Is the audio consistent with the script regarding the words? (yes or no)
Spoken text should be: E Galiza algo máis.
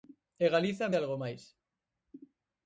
yes